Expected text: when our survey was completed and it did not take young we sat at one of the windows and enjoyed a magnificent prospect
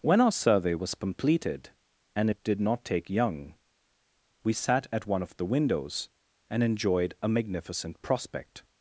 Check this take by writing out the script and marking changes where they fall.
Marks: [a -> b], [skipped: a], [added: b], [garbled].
when our survey was completed and it did not take young we sat at one of the windows and enjoyed a magnificent prospect